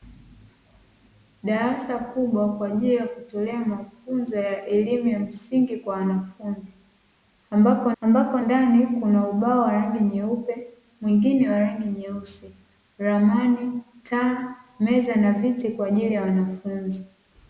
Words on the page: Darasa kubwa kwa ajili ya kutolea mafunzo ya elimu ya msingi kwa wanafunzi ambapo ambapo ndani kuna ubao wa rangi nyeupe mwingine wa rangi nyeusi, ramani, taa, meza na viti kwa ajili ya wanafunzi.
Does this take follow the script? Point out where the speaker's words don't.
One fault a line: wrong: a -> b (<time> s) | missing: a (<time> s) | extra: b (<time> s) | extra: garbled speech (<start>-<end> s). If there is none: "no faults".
no faults